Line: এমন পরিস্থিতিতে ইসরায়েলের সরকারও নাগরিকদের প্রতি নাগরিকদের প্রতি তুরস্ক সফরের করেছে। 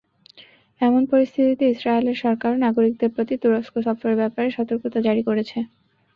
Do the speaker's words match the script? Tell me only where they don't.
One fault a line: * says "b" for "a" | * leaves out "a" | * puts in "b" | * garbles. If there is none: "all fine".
* says "তুরস্ক সফরের ব্যাপারে সতর্কতা জারি" for "নাগরিকদের প্রতি তুরস্ক সফরের"